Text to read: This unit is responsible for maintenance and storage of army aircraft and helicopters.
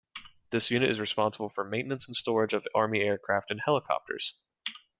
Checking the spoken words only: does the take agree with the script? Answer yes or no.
yes